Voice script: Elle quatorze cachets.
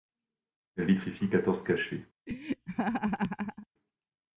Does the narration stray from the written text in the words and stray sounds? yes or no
yes